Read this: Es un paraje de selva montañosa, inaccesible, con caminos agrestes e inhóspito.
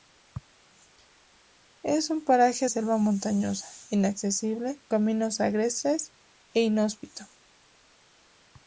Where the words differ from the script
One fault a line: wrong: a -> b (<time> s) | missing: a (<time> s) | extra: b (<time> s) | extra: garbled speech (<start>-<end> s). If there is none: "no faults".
missing: de (2.7 s)
missing: con (4.8 s)